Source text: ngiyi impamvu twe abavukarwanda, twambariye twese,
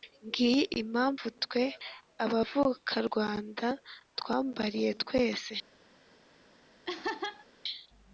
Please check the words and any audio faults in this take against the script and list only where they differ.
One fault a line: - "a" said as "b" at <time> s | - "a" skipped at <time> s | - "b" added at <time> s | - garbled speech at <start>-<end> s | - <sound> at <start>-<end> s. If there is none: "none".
- laugh at 6.8-7.5 s